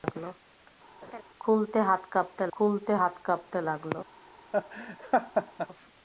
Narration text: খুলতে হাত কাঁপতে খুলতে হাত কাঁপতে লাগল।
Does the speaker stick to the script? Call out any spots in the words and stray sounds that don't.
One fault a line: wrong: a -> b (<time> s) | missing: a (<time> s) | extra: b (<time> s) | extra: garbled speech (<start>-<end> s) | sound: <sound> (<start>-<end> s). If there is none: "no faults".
sound: laugh (1.0-1.2 s)
sound: laugh (4.5-5.7 s)